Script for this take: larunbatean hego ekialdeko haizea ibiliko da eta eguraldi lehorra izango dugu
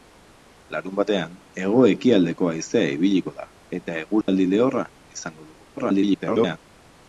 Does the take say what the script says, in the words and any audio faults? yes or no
no